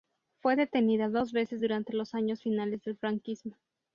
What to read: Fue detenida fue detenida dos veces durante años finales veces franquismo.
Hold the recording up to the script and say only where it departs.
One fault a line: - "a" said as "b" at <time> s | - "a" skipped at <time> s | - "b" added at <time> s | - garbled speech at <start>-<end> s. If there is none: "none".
- "fue detenida" skipped at 1.1 s
- "los" added at 1.9 s
- "veces" said as "del" at 2.8 s